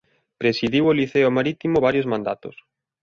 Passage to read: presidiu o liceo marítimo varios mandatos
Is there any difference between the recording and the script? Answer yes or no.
no